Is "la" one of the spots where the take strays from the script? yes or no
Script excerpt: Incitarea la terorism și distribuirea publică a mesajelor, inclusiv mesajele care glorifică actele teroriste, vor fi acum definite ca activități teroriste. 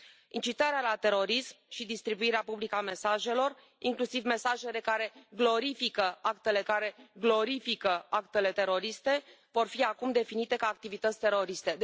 no